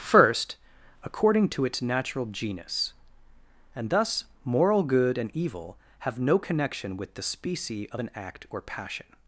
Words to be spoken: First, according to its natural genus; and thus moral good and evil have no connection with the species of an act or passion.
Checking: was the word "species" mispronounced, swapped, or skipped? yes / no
yes